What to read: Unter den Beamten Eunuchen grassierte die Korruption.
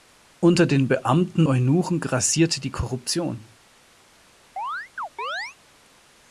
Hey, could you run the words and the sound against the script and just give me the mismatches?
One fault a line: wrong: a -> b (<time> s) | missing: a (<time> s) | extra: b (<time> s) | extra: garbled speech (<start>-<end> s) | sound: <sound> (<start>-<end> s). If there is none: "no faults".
sound: chirp (4.6-5.6 s)